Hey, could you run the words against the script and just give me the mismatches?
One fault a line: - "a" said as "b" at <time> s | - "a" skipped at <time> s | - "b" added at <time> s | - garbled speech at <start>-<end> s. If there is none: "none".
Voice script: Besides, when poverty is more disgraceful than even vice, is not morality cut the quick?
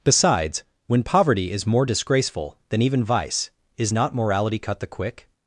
none